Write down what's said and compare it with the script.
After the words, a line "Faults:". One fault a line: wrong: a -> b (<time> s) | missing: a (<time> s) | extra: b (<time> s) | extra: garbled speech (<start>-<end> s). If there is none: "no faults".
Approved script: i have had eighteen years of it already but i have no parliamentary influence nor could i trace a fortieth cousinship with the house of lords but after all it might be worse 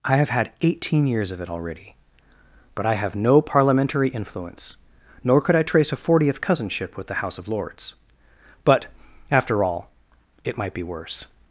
i have had eighteen years of it already but i have no parliamentary influence nor could i trace a fortieth cousinship with the house of lords but after all it might be worse
Faults:
no faults